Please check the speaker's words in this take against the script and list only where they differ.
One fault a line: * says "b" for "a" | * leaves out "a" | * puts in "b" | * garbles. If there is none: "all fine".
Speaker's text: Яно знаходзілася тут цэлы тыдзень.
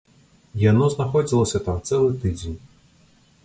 * says "там" for "тут"